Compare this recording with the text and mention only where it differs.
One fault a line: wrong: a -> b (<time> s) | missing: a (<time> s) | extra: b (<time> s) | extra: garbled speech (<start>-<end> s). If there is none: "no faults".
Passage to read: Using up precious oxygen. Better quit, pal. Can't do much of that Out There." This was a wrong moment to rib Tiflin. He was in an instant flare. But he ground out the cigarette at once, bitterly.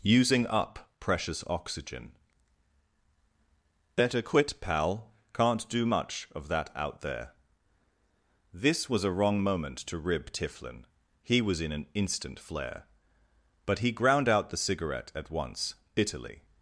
no faults